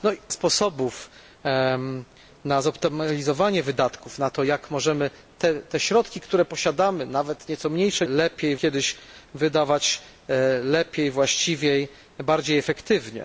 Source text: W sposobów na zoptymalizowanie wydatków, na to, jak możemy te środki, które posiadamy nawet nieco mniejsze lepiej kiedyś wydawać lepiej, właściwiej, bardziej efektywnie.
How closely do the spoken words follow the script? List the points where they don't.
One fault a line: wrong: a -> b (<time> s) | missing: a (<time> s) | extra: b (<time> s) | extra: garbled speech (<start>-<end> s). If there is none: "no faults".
no faults